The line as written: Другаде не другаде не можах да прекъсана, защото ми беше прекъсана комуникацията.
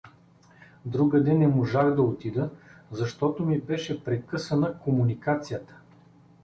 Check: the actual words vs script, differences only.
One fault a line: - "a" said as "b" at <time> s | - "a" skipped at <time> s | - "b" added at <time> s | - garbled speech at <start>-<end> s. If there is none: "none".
- "другаде не" skipped at 1.5 s
- "прекъсана" said as "отида" at 2.0 s